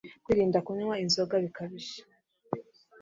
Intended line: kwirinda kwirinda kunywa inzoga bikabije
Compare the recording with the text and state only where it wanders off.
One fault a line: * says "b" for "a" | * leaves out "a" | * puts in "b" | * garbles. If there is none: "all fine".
* leaves out "kwirinda"